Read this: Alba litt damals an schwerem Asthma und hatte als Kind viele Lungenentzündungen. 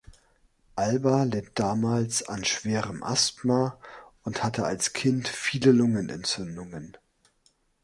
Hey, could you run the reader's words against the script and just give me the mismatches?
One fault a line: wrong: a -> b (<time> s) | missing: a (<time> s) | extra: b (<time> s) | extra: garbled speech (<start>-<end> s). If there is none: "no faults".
no faults